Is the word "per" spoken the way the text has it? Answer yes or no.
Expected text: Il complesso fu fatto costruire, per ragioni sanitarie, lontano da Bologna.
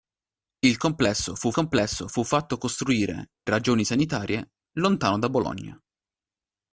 no